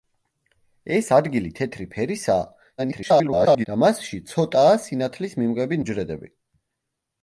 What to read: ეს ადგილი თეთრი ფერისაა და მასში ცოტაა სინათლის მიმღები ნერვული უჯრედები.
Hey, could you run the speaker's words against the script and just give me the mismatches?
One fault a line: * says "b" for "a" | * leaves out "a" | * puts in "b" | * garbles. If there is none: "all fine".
* garbles
* leaves out "ნერვული"